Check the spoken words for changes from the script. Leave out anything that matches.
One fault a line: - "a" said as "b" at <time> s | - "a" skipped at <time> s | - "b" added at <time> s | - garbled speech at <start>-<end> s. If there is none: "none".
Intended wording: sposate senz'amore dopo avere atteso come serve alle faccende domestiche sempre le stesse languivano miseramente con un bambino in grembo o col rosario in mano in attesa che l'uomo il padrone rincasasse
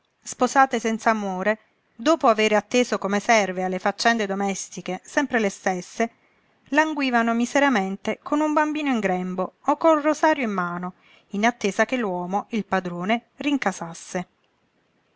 none